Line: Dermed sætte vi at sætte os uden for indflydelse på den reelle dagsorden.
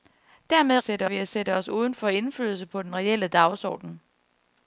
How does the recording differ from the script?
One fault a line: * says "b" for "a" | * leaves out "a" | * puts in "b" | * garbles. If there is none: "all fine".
all fine